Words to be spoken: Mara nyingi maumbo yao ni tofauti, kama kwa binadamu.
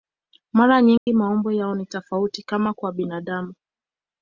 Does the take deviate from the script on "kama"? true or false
false